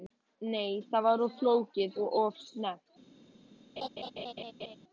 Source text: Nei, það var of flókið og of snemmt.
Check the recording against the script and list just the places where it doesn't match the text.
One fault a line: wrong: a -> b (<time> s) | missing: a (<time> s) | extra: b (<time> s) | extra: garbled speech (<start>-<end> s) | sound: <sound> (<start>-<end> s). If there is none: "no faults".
sound: laugh (3.8-4.8 s)